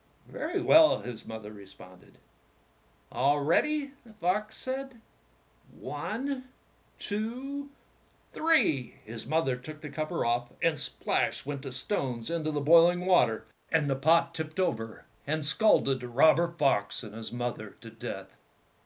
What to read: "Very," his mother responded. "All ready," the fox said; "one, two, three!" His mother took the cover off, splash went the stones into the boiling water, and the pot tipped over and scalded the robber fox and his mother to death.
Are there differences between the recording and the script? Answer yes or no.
yes